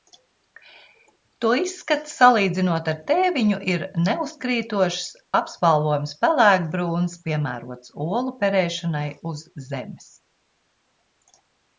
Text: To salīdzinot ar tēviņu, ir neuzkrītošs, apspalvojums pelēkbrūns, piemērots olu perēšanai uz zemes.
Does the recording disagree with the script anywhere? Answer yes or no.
yes